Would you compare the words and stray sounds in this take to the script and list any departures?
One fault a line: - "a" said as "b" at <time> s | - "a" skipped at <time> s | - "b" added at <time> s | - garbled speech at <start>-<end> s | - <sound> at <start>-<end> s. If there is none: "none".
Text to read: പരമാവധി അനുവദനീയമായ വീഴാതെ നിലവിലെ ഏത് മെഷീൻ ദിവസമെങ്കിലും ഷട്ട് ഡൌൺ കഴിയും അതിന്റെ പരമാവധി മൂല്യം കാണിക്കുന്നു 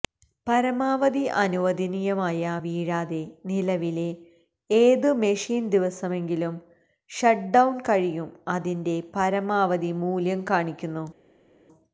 none